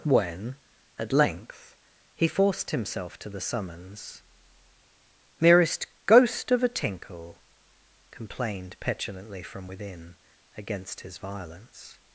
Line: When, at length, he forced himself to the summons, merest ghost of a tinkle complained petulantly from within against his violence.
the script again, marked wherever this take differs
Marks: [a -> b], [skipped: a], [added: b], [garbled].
When, at length, he forced himself to the summons, merest ghost of a tinkle complained petulantly from within against his violence.